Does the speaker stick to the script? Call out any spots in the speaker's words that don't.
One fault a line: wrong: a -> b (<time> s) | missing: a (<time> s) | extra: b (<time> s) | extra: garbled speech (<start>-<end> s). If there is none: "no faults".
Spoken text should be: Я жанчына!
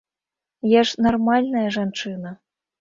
extra: ж нармальная (0.9 s)